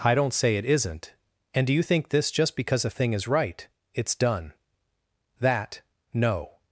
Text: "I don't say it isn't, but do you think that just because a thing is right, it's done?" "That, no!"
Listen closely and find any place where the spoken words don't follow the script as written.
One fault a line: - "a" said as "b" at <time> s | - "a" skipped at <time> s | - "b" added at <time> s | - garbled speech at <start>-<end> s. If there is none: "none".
- "but" said as "and" at 1.5 s
- "that" said as "this" at 2.1 s